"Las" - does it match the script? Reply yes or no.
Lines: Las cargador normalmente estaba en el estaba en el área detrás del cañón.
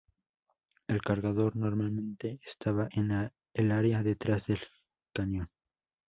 no